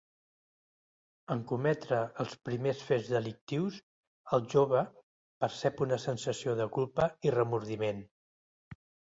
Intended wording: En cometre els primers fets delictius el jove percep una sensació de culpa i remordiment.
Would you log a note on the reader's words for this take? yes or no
no